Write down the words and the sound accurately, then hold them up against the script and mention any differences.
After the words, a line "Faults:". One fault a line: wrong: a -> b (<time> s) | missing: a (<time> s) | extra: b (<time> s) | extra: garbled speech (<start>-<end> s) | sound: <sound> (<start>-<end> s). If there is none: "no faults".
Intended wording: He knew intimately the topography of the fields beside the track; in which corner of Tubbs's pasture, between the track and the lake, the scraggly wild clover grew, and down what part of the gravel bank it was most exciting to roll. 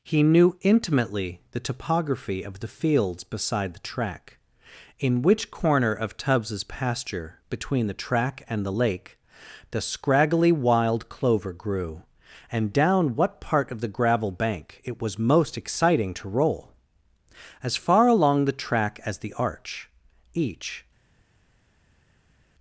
He knew intimately the topography of the fields beside the track; in which corner of Tubbs's pasture, between the track and the lake, the scraggly wild clover grew, and down what part of the gravel bank it was most exciting to roll. As far along the track as the Arch, each
Faults:
extra: As far along the track as the Arch each (17.6 s)